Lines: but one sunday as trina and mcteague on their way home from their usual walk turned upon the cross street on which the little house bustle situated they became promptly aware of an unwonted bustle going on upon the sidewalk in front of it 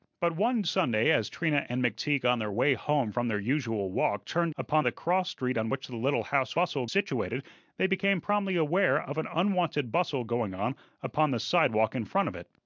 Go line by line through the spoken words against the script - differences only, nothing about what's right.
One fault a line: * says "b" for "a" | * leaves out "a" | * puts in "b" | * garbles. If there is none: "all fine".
all fine